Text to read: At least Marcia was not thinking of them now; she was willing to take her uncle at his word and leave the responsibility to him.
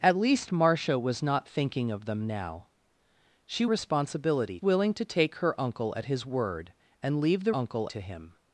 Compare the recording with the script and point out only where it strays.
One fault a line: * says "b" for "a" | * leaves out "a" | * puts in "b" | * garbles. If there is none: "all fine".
* says "responsibility" for "was"
* says "uncle" for "responsibility"